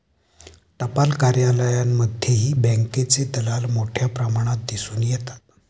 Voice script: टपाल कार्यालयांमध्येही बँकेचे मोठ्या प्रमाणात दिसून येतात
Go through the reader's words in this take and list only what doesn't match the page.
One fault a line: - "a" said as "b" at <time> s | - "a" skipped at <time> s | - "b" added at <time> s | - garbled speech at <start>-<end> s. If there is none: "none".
- "दलाल" added at 3.4 s